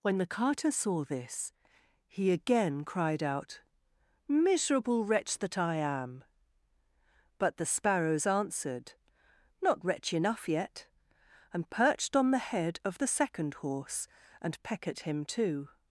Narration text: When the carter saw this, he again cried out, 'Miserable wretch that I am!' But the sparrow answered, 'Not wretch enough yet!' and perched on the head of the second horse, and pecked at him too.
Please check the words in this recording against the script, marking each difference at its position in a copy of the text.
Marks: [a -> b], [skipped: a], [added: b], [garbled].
When the carter saw this, he again cried out, 'Miserable wretch that I am!' But the [sparrow -> sparrows] answered, 'Not wretch enough yet!' and perched on the head of the second horse, and [pecked -> peck] at him too.